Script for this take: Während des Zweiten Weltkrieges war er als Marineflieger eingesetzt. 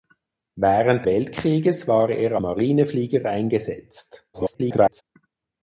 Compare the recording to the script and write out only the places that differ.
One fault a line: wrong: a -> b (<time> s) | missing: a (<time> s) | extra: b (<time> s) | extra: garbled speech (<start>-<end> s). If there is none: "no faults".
missing: des Zweiten (1.1 s)
missing: als (2.4 s)
extra: garbled speech (4.3-5.0 s)